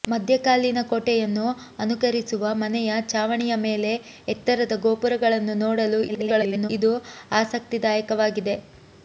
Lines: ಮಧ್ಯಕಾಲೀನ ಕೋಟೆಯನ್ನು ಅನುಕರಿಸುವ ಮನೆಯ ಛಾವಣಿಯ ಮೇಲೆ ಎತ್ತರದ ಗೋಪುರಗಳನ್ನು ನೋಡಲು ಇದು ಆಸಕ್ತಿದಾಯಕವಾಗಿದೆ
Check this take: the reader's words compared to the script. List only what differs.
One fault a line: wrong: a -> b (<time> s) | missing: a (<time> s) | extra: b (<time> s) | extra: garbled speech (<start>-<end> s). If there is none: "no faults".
extra: garbled speech (6.1-6.7 s)